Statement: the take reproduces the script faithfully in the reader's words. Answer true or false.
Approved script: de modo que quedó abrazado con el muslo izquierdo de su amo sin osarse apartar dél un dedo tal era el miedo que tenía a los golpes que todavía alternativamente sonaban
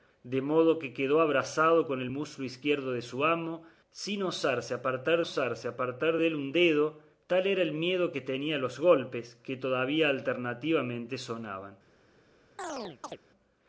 false